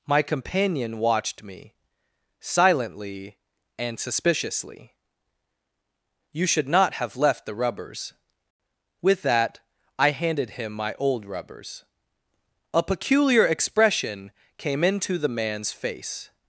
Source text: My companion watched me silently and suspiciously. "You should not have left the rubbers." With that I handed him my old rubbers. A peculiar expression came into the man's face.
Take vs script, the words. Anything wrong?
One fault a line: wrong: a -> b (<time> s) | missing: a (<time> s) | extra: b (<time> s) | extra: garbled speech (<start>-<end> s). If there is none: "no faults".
no faults